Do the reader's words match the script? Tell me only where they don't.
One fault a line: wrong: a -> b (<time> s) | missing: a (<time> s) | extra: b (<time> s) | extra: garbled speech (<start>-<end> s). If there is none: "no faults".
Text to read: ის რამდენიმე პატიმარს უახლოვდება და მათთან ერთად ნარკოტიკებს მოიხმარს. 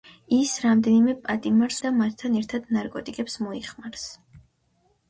missing: უახლოვდება (1.8 s)